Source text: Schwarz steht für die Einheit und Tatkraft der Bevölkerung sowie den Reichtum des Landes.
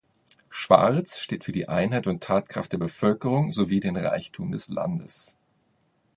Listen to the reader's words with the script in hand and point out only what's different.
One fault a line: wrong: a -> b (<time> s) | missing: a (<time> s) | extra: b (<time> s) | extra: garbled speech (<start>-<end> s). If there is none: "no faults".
no faults